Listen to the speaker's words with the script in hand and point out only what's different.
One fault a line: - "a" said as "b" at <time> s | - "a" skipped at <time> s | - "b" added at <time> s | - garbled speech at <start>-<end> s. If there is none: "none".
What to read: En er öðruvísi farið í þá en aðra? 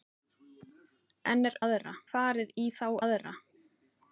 - "öðruvísi" said as "aðra" at 1.7 s
- "en" skipped at 2.9 s